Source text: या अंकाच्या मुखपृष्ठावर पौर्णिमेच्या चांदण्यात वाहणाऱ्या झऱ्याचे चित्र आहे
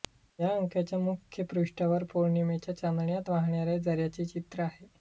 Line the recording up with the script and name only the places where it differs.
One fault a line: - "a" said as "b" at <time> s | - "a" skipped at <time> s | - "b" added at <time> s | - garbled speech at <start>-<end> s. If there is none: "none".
none